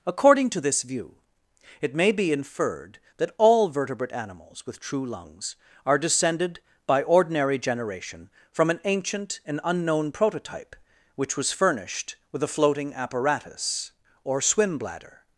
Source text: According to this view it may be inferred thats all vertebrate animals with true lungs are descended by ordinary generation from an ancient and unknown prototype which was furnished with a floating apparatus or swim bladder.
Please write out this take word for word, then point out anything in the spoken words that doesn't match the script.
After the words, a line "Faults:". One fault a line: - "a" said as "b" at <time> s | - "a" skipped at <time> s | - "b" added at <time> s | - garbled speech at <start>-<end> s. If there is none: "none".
According to this view it may be inferred that all vertebrate animals with true lungs are descended by ordinary generation from an ancient and unknown prototype which was furnished with a floating apparatus or swim bladder.
Faults:
- "thats" said as "that" at 3.2 s